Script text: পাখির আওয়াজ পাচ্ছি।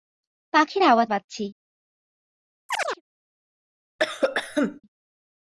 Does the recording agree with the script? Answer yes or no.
yes